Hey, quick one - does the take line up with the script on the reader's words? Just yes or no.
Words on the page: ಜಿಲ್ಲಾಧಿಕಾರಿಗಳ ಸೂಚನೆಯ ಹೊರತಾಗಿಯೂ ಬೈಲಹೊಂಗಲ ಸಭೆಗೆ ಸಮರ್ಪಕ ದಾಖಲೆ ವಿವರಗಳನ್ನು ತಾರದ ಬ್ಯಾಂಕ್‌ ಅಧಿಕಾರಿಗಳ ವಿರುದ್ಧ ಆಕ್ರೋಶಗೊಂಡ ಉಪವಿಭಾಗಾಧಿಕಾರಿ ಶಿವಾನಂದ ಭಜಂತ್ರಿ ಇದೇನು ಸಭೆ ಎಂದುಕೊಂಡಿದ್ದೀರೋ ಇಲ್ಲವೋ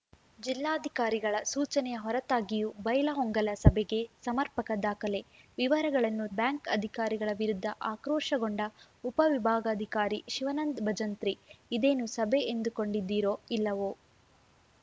no